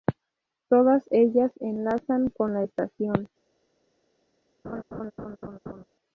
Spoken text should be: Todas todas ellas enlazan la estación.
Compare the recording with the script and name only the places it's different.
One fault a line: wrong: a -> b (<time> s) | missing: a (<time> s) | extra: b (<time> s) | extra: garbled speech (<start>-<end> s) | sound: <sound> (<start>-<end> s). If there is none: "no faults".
missing: todas (1.0 s)
extra: con (2.3 s)
sound: laugh (4.6-5.8 s)